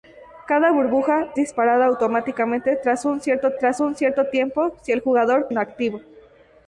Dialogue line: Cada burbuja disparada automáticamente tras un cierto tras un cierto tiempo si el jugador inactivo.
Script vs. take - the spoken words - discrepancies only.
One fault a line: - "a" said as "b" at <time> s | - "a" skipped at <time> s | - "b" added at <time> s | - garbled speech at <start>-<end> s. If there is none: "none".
none